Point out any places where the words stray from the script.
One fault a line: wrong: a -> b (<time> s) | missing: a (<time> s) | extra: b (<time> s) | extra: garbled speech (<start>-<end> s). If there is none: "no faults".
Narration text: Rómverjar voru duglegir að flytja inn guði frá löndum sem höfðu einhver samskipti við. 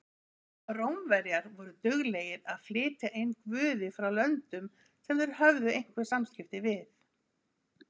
extra: þeir (5.2 s)